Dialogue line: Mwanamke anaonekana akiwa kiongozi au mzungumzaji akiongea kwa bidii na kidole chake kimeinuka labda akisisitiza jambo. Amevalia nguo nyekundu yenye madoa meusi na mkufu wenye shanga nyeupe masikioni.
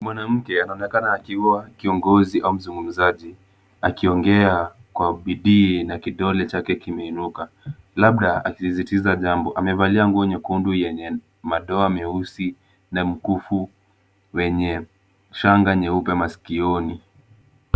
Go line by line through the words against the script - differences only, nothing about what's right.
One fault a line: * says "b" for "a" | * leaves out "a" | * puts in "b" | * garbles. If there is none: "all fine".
all fine